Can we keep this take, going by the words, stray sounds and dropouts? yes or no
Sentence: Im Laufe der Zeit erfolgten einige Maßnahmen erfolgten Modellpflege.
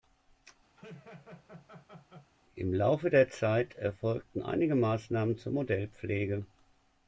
no